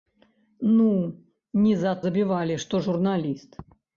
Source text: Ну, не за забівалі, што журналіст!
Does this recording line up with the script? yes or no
yes